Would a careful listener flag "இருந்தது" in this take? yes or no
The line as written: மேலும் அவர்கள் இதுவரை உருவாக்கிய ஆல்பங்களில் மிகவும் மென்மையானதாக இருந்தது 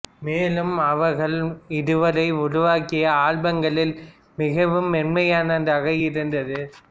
no